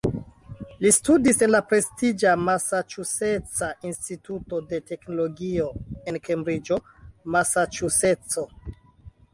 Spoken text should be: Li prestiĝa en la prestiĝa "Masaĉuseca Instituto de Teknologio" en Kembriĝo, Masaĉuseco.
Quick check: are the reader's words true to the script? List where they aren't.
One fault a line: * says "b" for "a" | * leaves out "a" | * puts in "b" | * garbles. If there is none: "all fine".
* says "studis" for "prestiĝa"